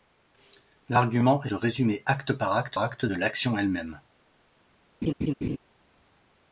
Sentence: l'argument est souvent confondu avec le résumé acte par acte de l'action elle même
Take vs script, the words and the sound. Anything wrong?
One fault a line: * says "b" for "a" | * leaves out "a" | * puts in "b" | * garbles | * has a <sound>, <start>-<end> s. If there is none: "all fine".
* leaves out "souvent confondu avec"
* puts in "acte"
* has a laugh, 5.0-5.6 s